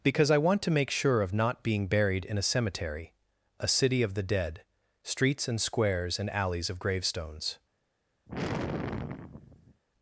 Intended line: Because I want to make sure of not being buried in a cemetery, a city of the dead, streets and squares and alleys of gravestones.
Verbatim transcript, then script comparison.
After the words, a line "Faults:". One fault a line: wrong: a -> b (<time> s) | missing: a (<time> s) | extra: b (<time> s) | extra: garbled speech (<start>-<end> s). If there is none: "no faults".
Because I want to make sure of not being buried in a cemetery, a city of the dead, streets and squares and alleys of gravestones.
Faults:
no faults